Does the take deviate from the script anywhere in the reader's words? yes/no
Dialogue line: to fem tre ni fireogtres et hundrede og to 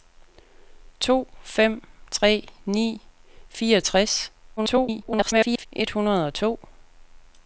yes